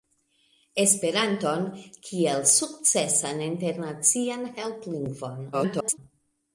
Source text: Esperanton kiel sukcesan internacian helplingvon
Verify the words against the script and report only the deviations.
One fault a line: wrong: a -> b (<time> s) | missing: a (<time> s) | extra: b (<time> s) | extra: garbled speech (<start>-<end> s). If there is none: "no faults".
extra: garbled speech (5.5-6.0 s)